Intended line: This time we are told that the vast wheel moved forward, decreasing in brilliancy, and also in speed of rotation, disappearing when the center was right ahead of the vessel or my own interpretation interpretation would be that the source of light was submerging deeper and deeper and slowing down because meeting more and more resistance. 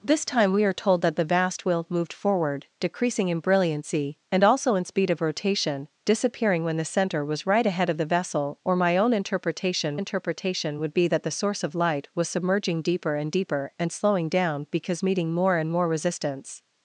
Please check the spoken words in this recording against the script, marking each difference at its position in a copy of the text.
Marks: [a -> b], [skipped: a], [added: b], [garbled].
This time we are told that the vast wheel moved forward, decreasing in brilliancy, and also in speed of rotation, disappearing when the center was right ahead of the vessel or my own interpretation interpretation would be that the source of light was submerging deeper and deeper and slowing down because meeting more and more resistance.